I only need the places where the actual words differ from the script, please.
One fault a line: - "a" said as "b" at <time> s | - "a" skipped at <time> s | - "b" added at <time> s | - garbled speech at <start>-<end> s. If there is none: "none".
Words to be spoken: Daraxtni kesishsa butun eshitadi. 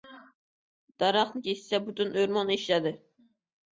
- "o‘rmon" added at 2.2 s